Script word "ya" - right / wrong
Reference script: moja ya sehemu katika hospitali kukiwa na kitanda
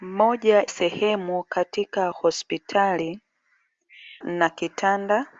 wrong